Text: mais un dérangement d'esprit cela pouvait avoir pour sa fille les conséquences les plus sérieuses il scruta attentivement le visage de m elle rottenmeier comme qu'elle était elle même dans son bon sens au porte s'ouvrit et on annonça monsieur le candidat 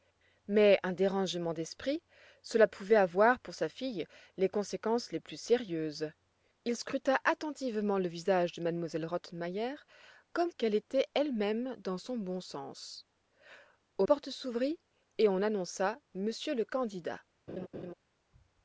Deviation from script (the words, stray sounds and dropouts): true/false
true